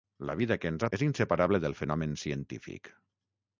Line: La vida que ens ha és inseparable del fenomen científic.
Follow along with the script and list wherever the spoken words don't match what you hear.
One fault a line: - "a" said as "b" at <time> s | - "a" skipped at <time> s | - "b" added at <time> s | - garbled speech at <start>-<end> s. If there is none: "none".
none